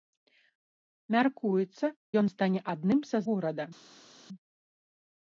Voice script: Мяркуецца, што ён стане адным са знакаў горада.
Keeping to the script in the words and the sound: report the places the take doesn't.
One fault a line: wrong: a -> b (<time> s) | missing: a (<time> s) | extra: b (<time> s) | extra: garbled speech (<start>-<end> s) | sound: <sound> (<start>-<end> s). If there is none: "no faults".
missing: што (1.9 s)
missing: знакаў (3.2 s)